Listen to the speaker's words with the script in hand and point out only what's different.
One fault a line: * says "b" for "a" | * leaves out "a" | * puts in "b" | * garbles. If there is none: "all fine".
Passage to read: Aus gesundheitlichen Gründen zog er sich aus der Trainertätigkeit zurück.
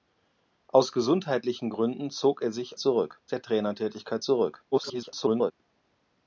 * says "zurück" for "aus"
* garbles